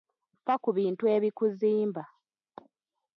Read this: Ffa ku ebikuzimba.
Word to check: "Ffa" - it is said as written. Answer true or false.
true